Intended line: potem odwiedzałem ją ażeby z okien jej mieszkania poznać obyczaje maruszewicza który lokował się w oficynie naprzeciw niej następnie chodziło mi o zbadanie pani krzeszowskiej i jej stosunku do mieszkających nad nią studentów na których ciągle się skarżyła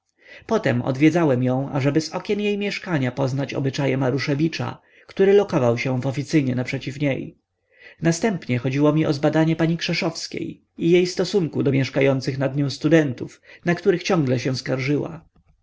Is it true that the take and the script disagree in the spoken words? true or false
false